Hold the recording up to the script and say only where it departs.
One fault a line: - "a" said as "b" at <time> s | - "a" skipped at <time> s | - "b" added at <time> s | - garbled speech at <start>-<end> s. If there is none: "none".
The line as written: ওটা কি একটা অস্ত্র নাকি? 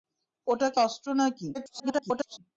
- "একটা" skipped at 0.8 s
- garbled speech at 1.5-2.4 s